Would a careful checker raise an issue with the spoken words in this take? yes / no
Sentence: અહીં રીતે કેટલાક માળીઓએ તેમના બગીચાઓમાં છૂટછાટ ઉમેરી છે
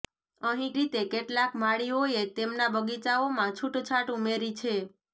no